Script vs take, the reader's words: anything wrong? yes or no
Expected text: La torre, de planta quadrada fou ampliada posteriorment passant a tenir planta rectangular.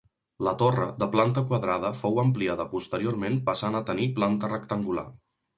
no